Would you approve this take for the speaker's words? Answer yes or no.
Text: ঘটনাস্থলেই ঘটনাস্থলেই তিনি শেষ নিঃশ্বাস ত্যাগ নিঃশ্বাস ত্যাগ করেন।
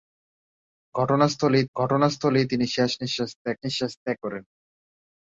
yes